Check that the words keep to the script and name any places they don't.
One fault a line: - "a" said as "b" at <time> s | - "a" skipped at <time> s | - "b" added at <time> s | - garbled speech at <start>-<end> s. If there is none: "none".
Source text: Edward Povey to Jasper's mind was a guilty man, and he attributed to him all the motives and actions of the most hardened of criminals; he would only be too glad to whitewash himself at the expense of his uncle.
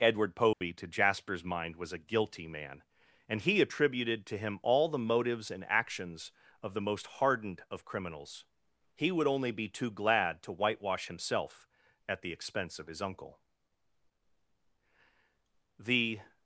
- "The" added at 15.8 s